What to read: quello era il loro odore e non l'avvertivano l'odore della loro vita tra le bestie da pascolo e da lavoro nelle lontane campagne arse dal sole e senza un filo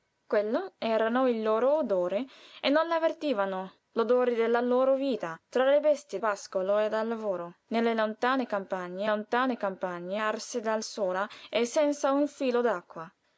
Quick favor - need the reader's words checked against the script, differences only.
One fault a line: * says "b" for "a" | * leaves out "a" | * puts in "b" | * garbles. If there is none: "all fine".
* leaves out "da"
* puts in "lontane campagne"